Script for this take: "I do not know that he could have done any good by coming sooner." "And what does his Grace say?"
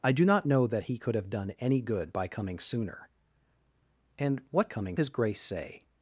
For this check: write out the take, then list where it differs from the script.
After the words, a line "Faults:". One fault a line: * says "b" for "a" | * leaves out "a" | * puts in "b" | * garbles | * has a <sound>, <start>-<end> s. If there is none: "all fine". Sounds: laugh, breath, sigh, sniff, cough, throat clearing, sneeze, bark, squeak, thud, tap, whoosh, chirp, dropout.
"I do not know that he could have done any good by coming sooner." "And what coming his Grace say?"
Faults:
* says "coming" for "does"